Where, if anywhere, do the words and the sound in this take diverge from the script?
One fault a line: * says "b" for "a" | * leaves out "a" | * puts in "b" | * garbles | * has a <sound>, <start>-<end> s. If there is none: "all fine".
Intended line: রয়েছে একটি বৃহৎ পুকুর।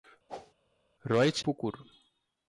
* has a whoosh, 0.3-0.5 s
* leaves out "একটি বৃহৎ"